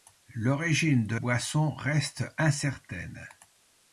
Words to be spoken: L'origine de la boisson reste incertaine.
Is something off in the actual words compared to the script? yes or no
yes